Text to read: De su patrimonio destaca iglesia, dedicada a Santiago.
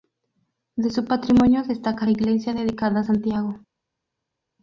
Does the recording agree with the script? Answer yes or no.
yes